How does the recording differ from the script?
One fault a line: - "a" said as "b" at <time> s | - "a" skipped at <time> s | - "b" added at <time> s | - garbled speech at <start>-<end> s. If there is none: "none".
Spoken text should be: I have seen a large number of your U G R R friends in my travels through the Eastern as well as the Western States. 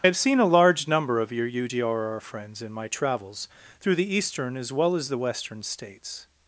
none